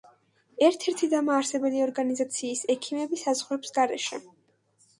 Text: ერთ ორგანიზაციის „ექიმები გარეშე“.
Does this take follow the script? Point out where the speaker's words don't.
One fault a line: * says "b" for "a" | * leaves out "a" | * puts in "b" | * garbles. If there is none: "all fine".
* puts in "ერთი დამაარსებელი"
* puts in "საზღვრებს"